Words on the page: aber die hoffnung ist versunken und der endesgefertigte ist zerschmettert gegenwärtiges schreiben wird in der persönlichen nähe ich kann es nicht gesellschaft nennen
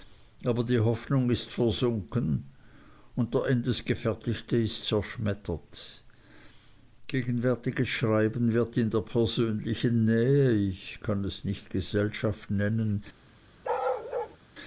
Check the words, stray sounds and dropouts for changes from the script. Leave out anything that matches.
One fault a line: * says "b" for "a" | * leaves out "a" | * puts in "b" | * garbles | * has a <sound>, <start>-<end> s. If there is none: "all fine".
* has a bark, 13.6-14.4 s